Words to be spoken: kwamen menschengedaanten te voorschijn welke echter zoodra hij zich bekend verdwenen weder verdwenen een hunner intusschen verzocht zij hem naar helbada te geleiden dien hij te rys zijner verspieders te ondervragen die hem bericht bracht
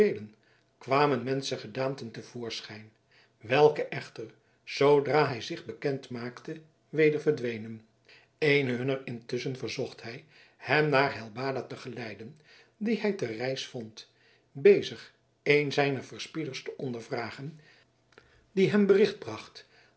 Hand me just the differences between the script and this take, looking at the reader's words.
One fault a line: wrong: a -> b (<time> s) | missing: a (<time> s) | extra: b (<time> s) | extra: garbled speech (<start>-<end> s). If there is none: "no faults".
wrong: verdwenen -> maakte (6.1 s)
wrong: zij -> hij (10.0 s)
extra: vond bezig een (13.7 s)